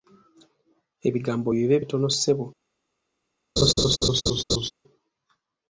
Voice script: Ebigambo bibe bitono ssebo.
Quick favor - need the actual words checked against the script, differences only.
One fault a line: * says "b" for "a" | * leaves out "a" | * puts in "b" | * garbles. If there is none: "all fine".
all fine